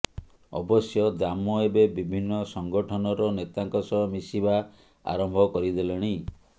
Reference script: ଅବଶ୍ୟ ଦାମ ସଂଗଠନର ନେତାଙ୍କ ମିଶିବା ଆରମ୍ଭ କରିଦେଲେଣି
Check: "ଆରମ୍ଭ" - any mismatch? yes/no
no